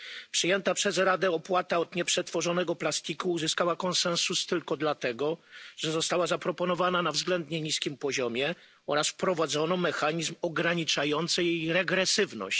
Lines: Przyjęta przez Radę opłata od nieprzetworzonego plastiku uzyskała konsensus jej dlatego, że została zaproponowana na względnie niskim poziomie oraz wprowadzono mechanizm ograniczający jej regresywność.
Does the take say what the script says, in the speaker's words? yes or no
no